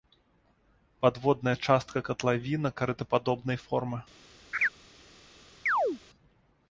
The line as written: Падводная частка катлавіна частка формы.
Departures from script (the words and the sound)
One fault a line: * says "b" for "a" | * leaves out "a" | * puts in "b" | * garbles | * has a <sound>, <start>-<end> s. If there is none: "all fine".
* says "карытападобнай" for "частка"
* has a laugh, 4.5-4.7 s
* has a chirp, 5.7-6.0 s